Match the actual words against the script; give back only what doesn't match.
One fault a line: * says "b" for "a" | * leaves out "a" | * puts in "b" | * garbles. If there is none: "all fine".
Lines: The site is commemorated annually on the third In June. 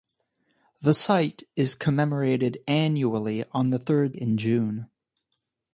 all fine